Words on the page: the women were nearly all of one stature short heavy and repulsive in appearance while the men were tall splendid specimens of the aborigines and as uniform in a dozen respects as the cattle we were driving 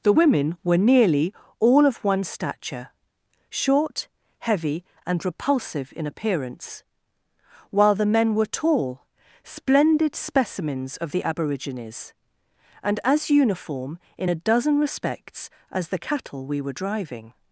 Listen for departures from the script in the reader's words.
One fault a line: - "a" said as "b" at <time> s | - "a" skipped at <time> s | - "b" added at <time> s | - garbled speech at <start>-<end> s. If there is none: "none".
none